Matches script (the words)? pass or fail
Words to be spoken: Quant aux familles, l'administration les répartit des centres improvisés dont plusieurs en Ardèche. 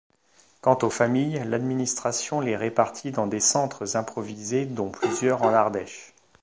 fail